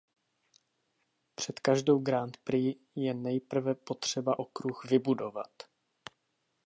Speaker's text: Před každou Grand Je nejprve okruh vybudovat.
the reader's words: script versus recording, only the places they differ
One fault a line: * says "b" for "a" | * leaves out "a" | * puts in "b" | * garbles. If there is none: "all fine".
* puts in "Prix"
* puts in "potřeba"